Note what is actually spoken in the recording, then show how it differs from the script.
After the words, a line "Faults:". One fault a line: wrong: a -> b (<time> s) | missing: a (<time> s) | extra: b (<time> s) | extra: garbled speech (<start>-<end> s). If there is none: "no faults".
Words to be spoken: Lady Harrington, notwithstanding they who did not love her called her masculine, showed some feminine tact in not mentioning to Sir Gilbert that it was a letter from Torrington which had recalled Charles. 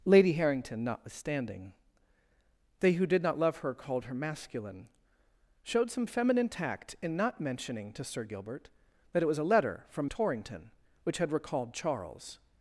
Lady Harrington, notwithstanding they who did not love her called her masculine, showed some feminine tact in not mentioning to Sir Gilbert that it was a letter from Torrington which had recalled Charles.
Faults:
no faults